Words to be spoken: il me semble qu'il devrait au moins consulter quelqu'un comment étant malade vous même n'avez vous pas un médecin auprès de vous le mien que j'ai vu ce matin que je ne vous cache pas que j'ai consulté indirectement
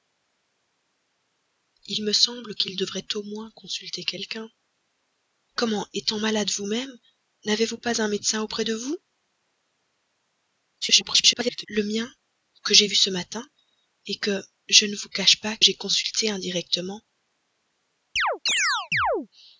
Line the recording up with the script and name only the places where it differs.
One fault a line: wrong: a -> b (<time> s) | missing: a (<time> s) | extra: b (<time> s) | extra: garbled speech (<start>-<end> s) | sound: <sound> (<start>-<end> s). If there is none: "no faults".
extra: garbled speech (10.8-11.7 s)
missing: que (15.6 s)
sound: chirp (18.2-19.3 s)